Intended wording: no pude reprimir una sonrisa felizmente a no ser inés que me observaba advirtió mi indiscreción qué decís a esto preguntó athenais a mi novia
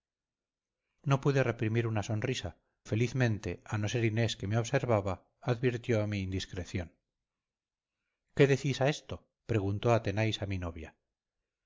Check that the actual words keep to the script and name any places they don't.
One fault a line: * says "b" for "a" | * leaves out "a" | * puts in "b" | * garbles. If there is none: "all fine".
all fine